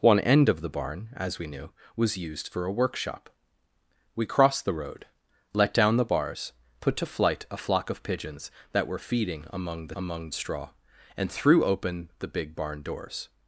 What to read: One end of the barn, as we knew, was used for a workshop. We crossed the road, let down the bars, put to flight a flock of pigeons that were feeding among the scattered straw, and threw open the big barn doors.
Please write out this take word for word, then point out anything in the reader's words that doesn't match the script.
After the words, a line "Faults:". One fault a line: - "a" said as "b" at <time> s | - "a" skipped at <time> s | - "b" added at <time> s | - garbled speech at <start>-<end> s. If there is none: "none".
One end of the barn, as we knew, was used for a workshop. We crossed the road, let down the bars, put to flight a flock of pigeons that were feeding among the among straw, and threw open the big barn doors.
Faults:
- "scattered" said as "among" at 9.9 s